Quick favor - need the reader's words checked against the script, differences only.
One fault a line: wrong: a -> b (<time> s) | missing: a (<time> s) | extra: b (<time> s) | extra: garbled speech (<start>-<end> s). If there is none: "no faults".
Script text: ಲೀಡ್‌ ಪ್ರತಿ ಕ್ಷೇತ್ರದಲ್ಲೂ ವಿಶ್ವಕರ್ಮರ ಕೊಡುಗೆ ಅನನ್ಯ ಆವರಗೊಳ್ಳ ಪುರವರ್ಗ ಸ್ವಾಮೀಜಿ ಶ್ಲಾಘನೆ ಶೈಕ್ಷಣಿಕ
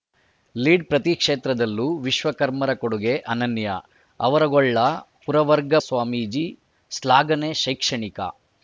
no faults